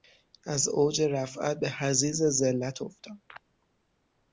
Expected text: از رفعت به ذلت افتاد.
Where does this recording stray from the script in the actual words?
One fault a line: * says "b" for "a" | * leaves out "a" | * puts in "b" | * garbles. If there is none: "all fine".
* puts in "اوج"
* puts in "حضیض"